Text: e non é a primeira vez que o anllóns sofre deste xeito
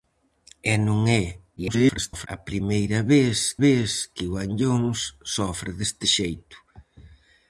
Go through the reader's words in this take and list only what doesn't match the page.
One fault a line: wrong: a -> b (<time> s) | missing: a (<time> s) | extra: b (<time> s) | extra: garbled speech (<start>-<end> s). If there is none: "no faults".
extra: garbled speech (1.6-2.3 s)
extra: vez (3.6 s)